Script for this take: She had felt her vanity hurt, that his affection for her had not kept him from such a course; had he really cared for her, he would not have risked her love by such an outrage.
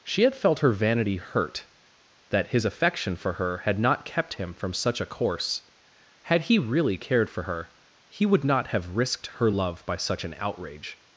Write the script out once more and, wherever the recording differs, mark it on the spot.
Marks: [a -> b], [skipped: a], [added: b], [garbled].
She had felt her vanity hurt, that his affection for her had not kept him from such a course; had he really cared for her, he would not have risked her love by such an outrage.